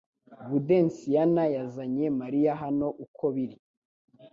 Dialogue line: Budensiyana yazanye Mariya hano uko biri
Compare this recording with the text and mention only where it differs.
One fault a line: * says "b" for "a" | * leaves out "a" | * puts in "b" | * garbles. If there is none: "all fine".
all fine